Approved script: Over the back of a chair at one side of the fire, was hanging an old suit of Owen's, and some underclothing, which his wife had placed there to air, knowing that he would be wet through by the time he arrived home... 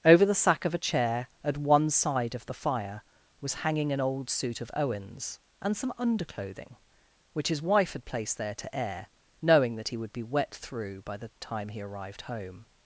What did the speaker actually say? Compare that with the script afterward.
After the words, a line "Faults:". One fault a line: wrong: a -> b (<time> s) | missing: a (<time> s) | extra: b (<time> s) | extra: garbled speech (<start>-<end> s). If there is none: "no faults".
Over the sack of a chair at one side of the fire, was hanging an old suit of Owen's, and some underclothing, which his wife had placed there to air, knowing that he would be wet through by the time he arrived home...
Faults:
wrong: back -> sack (0.3 s)